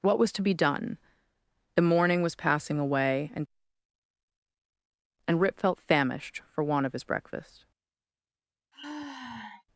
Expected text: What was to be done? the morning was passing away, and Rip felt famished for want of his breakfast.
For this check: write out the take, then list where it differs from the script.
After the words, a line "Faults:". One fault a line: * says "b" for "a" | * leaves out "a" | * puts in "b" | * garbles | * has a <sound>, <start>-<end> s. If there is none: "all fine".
What was to be done? the morning was passing away, and and Rip felt famished for want of his breakfast.
Faults:
* puts in "and"
* has a sigh, 8.7-9.6 s